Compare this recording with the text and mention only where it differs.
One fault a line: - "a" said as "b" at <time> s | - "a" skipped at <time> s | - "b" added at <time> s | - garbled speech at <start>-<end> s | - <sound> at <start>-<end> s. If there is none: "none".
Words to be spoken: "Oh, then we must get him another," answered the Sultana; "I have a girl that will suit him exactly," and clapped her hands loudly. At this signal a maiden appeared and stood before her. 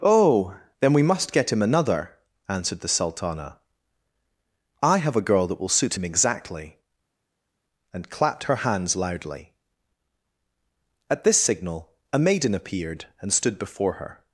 none